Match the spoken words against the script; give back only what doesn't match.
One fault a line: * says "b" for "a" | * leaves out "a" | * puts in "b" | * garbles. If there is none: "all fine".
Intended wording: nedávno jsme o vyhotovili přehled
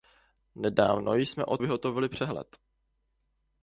all fine